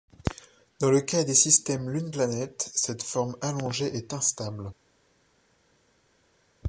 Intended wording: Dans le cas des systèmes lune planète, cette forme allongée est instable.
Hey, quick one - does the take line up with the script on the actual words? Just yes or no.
yes